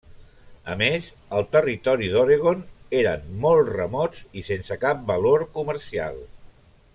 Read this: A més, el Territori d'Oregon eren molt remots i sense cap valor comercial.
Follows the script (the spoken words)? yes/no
yes